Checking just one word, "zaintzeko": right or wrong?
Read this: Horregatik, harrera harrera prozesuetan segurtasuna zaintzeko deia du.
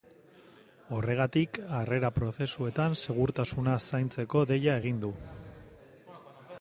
right